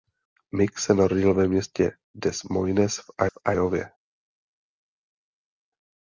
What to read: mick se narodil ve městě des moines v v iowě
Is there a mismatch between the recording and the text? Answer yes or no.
no